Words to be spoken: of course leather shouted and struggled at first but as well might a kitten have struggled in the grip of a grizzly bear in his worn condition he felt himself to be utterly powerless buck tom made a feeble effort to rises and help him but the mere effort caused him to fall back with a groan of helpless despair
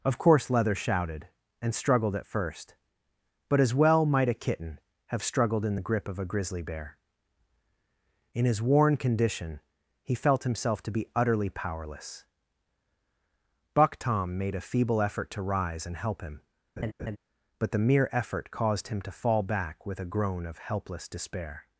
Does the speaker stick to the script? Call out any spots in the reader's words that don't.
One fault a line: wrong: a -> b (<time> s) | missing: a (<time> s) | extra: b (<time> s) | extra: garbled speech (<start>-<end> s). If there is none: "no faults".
wrong: rises -> rise (15.4 s)